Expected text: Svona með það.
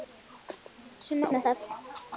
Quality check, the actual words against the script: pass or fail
pass